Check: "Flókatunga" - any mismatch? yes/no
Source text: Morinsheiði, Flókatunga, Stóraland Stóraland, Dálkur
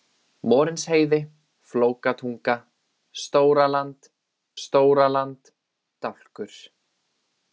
no